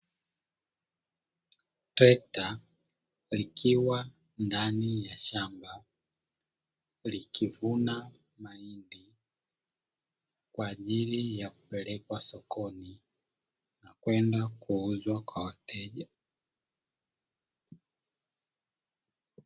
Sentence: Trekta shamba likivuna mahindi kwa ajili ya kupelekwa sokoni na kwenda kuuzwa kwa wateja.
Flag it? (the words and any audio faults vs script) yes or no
yes